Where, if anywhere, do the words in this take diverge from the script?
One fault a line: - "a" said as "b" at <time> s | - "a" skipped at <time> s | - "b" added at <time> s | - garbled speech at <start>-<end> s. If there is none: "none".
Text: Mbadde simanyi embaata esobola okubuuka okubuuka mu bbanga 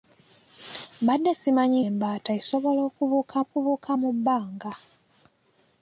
none